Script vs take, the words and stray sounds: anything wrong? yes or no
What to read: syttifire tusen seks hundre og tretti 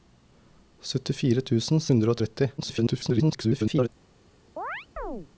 yes